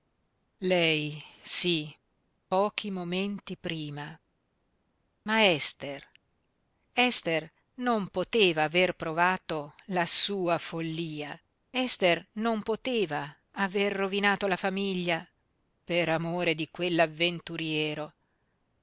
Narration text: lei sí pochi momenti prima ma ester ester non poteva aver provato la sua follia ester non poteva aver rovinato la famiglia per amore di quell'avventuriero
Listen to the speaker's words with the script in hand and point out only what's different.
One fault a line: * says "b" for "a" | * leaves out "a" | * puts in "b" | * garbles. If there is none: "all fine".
all fine